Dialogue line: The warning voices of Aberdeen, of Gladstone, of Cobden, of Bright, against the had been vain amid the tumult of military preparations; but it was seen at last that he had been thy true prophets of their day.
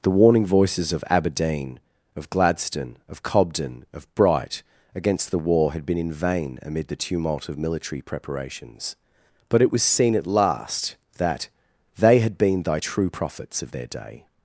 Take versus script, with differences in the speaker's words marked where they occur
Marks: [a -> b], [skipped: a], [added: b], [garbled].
The warning voices of Aberdeen, of Gladstone, of Cobden, of Bright, against the [added: war] had been [added: in] vain amid the tumult of military preparations; but it was seen at last that [he -> they] had been thy true prophets of their day.